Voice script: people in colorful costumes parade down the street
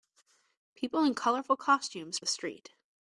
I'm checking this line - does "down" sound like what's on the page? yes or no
no